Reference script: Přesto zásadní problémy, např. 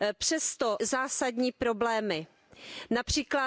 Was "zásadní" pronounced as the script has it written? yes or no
yes